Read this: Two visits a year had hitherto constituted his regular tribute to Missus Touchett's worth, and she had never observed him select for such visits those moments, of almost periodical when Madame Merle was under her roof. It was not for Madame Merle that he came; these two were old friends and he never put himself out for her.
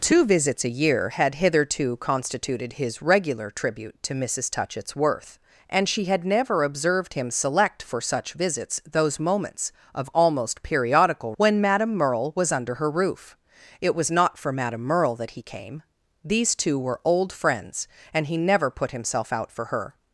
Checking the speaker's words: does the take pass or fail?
pass